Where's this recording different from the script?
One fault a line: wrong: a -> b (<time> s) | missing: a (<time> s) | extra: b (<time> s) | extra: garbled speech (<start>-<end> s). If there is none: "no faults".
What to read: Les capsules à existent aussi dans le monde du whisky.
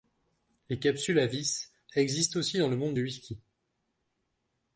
extra: vis (1.3 s)